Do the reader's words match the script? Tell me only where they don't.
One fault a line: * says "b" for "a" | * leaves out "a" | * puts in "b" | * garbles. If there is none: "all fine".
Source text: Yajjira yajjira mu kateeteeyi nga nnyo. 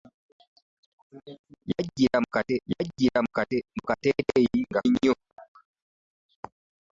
all fine